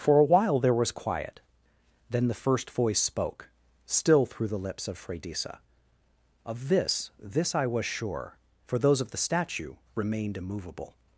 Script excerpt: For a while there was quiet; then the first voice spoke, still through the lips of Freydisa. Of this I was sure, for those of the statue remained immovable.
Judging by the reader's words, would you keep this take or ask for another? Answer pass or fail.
fail